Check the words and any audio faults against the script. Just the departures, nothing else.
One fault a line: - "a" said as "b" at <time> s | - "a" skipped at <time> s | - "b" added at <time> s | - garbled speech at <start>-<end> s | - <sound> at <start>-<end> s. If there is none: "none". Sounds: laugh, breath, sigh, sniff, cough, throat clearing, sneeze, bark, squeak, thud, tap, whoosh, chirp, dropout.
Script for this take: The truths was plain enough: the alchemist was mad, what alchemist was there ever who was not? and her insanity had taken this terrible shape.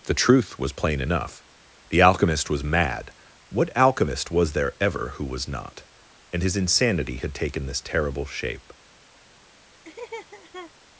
- "truths" said as "truth" at 0.1 s
- "her" said as "his" at 6.4 s
- laugh at 9.8-10.7 s